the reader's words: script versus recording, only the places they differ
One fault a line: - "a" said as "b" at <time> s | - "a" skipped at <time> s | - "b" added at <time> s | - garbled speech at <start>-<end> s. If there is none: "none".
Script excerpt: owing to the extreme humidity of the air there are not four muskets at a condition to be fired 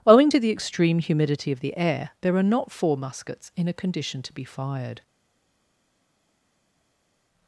- "at" said as "in" at 3.6 s